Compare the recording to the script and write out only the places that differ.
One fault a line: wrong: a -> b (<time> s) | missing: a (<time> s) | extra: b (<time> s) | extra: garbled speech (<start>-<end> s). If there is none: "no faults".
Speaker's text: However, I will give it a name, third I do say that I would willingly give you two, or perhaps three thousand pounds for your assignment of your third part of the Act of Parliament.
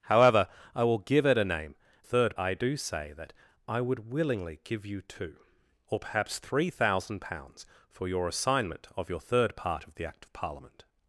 no faults